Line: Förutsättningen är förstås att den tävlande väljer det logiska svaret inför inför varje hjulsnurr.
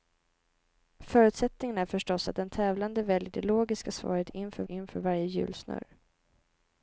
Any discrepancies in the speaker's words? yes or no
no